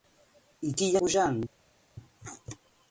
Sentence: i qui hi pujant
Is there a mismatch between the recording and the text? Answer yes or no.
no